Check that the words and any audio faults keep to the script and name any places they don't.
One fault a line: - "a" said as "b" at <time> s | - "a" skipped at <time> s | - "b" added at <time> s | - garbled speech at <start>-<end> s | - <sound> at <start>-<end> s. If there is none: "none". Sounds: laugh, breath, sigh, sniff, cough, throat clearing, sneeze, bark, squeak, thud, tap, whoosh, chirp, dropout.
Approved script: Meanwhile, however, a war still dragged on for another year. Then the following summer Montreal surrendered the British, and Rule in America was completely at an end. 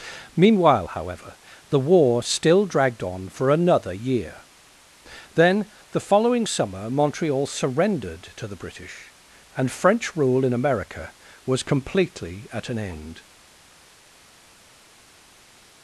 - "a" said as "the" at 1.7 s
- "to" added at 8.3 s
- "French" added at 9.7 s